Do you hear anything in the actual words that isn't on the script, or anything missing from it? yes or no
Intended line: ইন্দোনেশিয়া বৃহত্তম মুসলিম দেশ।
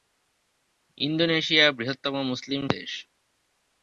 no